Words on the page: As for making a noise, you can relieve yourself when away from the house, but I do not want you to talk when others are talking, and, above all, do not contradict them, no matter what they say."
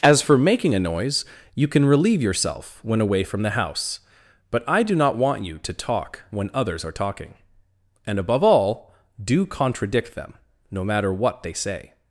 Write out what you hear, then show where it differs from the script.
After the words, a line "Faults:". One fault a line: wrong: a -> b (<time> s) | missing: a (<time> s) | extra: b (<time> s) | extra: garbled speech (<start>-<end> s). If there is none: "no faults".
As for making a noise, you can relieve yourself when away from the house, but I do not want you to talk when others are talking, and, above all, do contradict them, no matter what they say."
Faults:
missing: not (9.4 s)